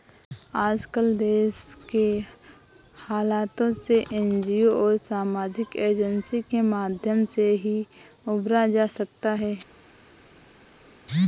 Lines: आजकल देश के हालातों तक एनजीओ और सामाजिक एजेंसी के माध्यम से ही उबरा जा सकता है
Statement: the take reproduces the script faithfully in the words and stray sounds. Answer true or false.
false